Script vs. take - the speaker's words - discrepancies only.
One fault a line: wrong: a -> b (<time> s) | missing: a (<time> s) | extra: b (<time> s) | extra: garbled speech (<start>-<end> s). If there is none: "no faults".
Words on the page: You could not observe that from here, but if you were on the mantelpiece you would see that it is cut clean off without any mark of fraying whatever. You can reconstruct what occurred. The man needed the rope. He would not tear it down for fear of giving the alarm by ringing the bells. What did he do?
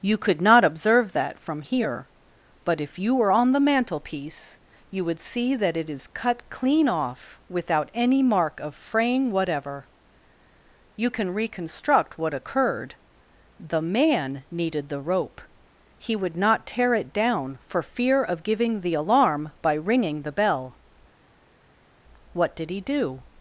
wrong: bells -> bell (20.3 s)